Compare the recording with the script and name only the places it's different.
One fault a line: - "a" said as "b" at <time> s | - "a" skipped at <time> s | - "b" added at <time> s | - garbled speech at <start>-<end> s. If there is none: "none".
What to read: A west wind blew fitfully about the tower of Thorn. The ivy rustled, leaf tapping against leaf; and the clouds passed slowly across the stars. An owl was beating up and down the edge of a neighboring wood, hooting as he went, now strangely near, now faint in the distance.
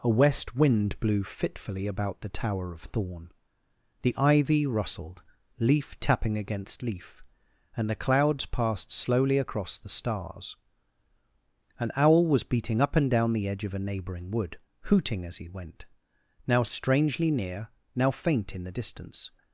none